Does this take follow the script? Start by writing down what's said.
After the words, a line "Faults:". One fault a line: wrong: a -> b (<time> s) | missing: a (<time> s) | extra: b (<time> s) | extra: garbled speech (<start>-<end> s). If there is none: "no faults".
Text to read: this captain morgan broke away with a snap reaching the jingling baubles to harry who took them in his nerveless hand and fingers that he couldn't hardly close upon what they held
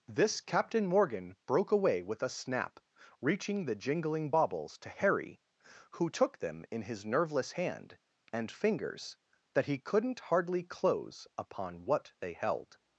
this captain morgan broke away with a snap reaching the jingling baubles to harry who took them in his nerveless hand and fingers that he couldn't hardly close upon what they held
Faults:
no faults